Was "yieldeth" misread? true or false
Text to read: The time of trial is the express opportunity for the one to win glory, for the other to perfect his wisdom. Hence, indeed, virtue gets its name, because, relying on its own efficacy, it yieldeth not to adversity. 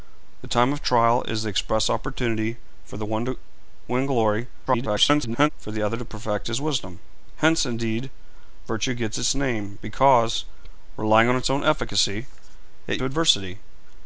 true